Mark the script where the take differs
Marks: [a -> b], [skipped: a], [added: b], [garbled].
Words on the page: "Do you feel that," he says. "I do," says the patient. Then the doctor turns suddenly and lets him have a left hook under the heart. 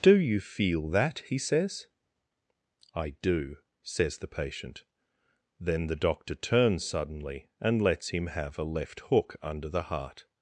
"Do you feel that," he says. "I do," says the patient. Then the doctor turns suddenly and lets him have a left hook under the heart.